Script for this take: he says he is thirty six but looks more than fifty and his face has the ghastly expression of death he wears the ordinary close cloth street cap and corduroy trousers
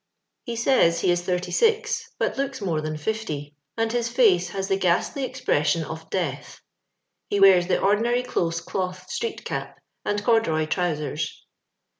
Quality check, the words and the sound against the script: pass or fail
pass